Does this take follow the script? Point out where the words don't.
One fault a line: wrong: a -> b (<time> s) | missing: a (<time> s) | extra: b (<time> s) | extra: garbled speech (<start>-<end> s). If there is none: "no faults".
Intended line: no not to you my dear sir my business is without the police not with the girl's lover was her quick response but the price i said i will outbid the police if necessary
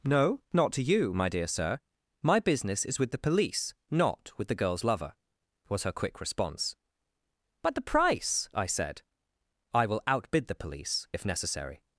wrong: without -> with (3.0 s)